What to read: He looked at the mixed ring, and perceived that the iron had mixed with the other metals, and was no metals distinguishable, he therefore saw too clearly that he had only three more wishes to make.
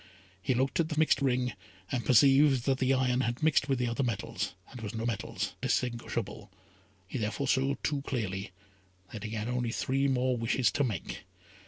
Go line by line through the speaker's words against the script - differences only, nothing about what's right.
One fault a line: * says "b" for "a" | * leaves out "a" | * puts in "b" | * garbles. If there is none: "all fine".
all fine